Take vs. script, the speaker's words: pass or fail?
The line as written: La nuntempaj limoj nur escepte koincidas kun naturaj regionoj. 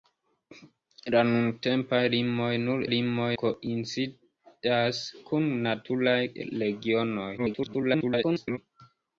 fail